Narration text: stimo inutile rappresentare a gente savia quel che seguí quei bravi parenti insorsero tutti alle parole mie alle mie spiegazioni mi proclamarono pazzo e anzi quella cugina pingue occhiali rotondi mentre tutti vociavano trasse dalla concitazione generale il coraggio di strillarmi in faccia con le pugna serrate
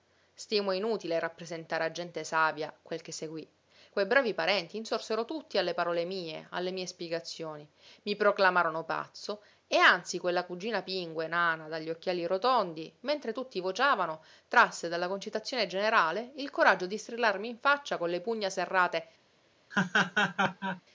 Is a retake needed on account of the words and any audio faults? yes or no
yes